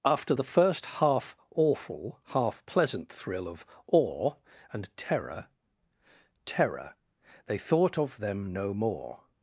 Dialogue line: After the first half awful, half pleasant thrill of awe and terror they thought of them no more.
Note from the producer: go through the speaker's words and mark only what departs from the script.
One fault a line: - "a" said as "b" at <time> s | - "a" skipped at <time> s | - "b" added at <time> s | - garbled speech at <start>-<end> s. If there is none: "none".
- "terror" added at 6.4 s